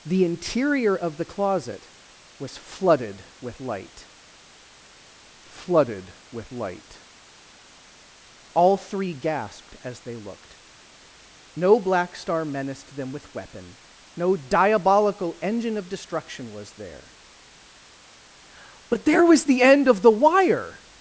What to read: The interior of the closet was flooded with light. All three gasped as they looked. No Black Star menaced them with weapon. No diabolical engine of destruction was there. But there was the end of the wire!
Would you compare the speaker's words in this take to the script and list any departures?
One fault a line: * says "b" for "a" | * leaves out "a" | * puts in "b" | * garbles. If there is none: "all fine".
* puts in "flooded with light"